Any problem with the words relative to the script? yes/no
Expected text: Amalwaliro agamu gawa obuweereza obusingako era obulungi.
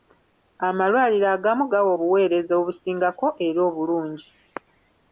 no